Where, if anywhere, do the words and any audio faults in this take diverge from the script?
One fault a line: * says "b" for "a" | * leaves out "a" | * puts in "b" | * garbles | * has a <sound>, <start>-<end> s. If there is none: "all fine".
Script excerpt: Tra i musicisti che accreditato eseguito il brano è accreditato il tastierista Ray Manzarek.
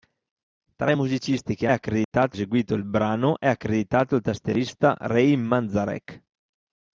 * has a dropout, 2.0-2.1 s